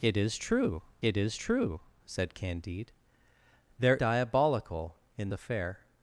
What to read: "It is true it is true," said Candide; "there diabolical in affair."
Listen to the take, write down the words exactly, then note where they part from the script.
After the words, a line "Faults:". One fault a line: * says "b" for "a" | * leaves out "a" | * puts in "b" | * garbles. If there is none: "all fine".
"It is true it is true," said Candide; "there diabolical in affair."
Faults:
all fine